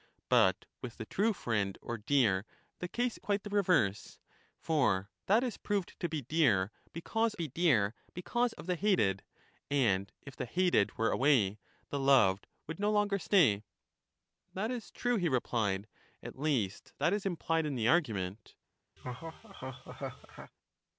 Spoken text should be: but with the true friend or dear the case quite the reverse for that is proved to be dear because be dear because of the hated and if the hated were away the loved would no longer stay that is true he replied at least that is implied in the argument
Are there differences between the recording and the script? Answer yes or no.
no